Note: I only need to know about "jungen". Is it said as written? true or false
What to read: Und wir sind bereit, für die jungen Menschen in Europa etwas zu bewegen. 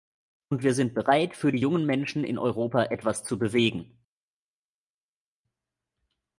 true